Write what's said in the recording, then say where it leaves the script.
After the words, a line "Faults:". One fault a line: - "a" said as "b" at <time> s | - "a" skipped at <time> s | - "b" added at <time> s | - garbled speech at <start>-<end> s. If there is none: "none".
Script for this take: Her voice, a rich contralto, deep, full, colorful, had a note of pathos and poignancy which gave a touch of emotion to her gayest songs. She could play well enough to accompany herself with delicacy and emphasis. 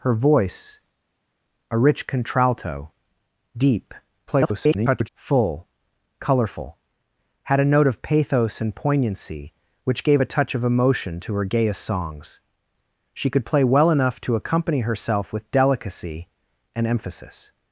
Her voice, a rich contralto, deep, [garbled] full, colorful, had a note of pathos and poignancy which gave a touch of emotion to her gayest songs. She could play well enough to accompany herself with delicacy and emphasis.
Faults:
- garbled speech at 4.3-5.1 s